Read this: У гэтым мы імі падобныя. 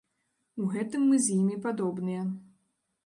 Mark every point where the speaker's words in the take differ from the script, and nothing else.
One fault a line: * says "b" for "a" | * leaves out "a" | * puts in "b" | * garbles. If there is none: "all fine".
* puts in "з"